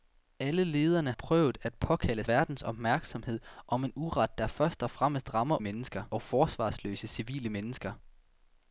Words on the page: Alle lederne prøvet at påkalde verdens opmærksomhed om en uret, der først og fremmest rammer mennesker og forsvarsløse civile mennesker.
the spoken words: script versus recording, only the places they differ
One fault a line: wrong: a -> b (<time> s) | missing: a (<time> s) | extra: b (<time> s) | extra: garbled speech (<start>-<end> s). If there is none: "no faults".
no faults